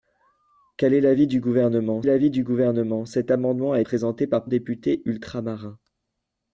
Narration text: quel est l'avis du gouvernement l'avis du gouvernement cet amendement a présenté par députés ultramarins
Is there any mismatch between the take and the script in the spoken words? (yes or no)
no